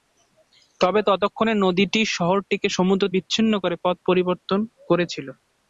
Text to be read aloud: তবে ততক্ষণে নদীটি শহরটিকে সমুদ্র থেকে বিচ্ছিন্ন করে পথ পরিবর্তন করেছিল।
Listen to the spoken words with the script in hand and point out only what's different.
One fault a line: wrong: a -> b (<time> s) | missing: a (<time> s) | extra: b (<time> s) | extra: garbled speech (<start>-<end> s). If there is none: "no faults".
missing: থেকে (3.0 s)